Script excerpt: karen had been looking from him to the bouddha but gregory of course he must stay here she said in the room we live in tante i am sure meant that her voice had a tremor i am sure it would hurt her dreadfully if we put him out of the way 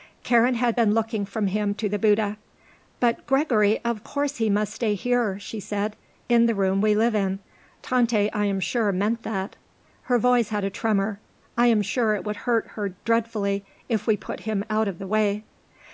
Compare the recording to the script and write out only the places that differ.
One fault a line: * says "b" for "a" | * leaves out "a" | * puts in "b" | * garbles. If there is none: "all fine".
all fine